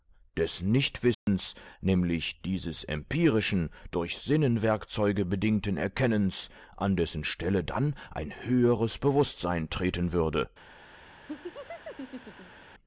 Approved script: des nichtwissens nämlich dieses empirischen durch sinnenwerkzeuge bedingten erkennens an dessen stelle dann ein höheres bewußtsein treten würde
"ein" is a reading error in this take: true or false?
false